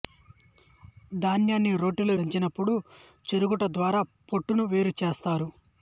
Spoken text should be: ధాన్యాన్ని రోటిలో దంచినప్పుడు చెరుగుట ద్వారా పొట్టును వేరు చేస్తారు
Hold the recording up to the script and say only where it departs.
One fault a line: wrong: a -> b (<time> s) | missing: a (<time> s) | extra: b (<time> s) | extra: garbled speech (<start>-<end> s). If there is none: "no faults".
no faults